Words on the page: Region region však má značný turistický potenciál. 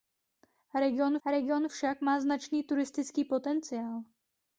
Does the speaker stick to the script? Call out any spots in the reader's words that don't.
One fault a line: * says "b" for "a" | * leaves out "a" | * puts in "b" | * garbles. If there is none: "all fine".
all fine